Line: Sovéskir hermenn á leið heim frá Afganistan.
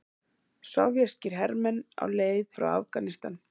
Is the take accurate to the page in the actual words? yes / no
no